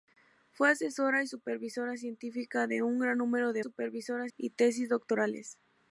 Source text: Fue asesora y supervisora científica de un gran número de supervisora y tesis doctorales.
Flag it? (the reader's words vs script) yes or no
no